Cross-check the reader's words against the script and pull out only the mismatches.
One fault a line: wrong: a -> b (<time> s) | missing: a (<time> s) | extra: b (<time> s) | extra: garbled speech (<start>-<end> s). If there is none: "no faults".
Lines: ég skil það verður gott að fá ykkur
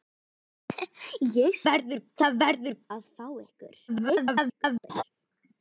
wrong: skil -> verður (1.7 s)
missing: gott (2.8 s)
extra: garbled speech (3.9-5.0 s)